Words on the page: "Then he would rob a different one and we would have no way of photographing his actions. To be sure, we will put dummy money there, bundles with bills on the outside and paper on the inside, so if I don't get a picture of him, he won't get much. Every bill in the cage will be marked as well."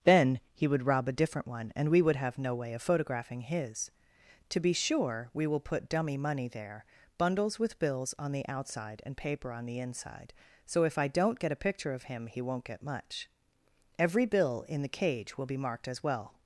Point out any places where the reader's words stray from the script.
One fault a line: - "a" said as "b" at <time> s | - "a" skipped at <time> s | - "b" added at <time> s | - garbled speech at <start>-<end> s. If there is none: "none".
- "actions" skipped at 3.9 s